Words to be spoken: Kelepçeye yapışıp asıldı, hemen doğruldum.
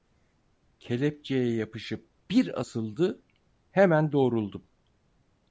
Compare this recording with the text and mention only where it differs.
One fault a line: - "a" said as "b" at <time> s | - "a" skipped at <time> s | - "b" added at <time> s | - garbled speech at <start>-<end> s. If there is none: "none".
- "bir" added at 2.3 s